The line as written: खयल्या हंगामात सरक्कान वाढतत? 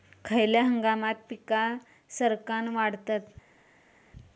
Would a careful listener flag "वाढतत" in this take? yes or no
no